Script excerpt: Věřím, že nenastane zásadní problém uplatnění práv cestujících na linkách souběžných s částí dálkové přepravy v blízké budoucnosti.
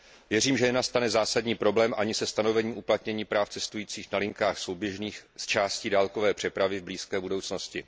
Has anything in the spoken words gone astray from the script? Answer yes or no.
yes